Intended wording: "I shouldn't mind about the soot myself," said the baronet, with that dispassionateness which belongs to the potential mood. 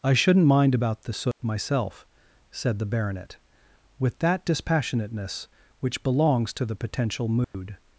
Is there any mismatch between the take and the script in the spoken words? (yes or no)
no